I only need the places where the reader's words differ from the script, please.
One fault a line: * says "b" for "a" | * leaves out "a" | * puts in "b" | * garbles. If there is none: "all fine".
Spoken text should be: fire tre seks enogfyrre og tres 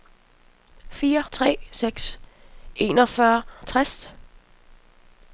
all fine